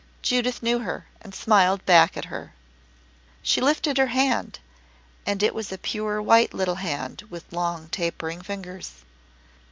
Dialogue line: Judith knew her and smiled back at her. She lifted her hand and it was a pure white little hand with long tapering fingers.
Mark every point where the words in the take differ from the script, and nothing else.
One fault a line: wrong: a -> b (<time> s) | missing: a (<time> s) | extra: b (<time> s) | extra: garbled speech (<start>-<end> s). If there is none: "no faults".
no faults